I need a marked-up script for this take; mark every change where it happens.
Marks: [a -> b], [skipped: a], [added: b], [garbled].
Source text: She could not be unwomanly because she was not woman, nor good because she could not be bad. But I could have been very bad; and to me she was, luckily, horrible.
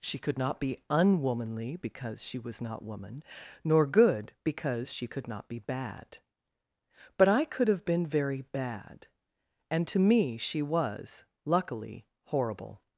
She could not be unwomanly because she was not woman, nor good because she could not be bad. But I could have been very bad; and to me she was, luckily, horrible.